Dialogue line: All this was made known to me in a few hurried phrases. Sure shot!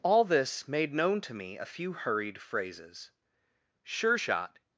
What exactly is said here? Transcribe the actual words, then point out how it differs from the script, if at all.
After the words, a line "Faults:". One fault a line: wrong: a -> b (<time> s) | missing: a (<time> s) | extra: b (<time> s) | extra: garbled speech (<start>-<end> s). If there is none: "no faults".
All this made known to me a few hurried phrases. Sure shot!
Faults:
missing: was (0.7 s)
missing: in (1.6 s)